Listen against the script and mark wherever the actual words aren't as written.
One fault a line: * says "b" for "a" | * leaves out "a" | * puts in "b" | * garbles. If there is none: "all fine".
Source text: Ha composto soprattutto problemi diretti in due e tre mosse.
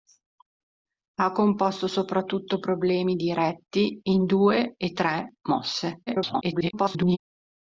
* garbles